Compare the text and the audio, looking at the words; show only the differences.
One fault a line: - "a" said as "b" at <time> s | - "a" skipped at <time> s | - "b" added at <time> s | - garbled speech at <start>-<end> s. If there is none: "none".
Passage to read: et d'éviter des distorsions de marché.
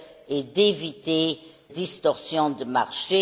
- "des" skipped at 1.4 s